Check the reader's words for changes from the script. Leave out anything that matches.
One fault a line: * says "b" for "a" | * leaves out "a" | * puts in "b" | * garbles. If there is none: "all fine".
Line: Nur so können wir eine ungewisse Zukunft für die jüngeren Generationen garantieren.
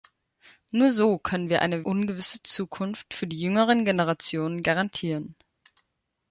all fine